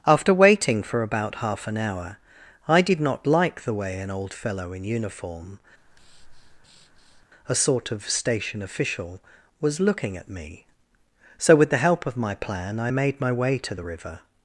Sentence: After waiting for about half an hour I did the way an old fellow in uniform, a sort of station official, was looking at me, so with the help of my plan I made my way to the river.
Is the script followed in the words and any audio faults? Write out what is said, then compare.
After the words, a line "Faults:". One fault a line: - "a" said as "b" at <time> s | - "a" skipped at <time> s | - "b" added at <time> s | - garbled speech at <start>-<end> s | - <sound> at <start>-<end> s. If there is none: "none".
After waiting for about half an hour I did not like the way an old fellow in uniform, a sort of station official, was looking at me, so with the help of my plan I made my way to the river.
Faults:
- "not like" added at 3.0 s
- breath at 5.8-7.3 s